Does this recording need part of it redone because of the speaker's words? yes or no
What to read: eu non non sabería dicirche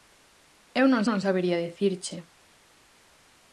no